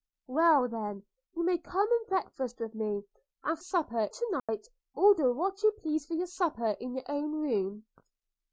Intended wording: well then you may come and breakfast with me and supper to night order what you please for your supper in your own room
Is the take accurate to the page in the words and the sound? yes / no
no